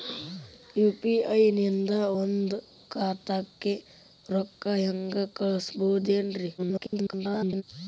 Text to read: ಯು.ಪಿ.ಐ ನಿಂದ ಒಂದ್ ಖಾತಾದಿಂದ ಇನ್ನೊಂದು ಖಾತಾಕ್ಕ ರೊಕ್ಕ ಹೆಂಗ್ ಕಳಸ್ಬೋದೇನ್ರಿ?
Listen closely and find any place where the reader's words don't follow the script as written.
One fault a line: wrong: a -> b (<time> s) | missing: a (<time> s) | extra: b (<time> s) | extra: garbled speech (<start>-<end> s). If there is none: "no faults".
missing: ಖಾತಾದಿಂದ ಇನ್ನೊಂದು (2.5 s)
extra: garbled speech (6.6-7.6 s)